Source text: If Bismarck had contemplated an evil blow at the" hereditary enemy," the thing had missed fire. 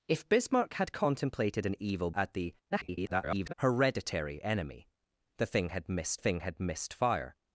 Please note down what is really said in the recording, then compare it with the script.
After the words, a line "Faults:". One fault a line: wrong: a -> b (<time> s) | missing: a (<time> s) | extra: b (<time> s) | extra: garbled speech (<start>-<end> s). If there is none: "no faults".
If Bismarck had contemplated an evil at the" [garbled] hereditary enemy," the thing had missed thing had missed fire.
Faults:
missing: blow (2.1 s)
extra: garbled speech (2.7-3.5 s)
extra: thing had missed (6.2 s)